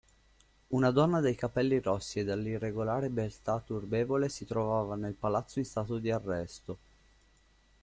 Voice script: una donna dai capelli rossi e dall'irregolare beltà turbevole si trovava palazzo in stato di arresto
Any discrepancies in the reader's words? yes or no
yes